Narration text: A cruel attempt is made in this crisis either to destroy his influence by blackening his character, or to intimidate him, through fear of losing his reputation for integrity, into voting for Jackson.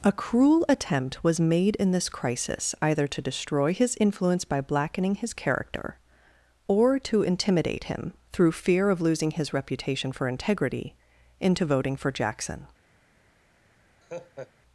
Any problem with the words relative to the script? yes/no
yes